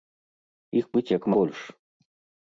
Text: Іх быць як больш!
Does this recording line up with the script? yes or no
yes